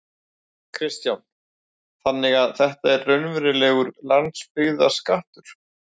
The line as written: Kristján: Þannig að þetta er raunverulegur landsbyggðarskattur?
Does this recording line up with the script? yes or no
yes